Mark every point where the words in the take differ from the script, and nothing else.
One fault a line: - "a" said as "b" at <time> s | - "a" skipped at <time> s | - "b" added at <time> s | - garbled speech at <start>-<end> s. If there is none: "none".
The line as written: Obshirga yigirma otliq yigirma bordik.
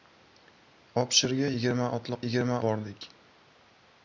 none